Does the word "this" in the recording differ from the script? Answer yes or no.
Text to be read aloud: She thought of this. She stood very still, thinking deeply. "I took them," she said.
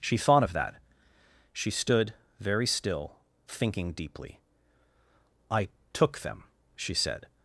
yes